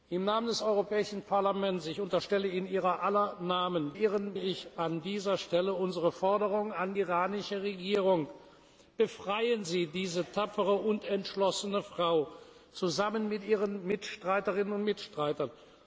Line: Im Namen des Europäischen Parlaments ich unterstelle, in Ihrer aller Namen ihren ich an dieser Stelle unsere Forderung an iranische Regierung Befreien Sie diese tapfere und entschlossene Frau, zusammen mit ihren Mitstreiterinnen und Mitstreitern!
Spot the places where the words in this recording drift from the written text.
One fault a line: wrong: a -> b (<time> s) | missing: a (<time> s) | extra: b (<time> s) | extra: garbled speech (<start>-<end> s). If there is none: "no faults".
no faults